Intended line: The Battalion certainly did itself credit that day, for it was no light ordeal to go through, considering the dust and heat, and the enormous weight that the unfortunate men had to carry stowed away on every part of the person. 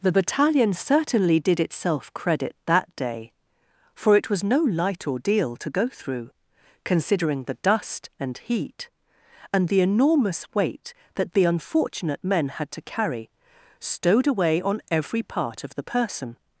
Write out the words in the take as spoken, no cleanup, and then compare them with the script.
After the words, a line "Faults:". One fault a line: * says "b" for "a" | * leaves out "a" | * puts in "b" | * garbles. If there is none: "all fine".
The Battalion certainly did itself credit that day, for it was no light ordeal to go through, considering the dust and heat, and the enormous weight that the unfortunate men had to carry stowed away on every part of the person.
Faults:
all fine